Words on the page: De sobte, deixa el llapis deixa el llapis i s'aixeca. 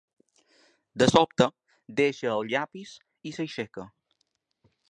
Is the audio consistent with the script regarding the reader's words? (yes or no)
no